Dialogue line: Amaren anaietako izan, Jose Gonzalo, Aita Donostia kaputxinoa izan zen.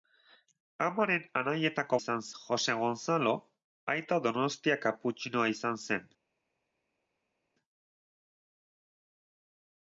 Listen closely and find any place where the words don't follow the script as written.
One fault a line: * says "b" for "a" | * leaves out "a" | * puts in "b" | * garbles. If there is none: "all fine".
all fine